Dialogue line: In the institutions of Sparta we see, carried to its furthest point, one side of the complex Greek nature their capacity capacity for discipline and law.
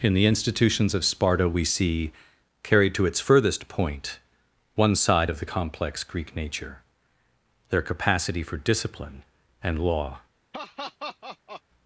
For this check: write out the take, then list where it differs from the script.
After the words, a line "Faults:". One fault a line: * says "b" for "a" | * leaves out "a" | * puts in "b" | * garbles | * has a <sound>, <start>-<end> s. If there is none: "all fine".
In the institutions of Sparta we see, carried to its furthest point, one side of the complex Greek nature their capacity for discipline and law.
Faults:
* leaves out "capacity"
* has a laugh, 10.5-11.6 s